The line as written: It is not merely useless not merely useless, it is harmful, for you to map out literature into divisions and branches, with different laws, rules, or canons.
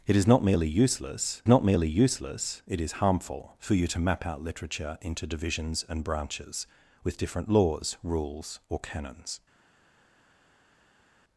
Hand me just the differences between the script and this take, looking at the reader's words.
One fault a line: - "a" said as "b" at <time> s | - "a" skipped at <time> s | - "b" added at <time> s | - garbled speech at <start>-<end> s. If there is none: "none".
none